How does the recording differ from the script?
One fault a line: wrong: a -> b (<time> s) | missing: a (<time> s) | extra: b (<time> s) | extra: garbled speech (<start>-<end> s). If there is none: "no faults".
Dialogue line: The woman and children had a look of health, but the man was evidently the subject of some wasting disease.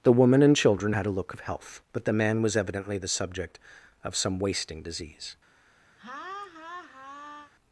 no faults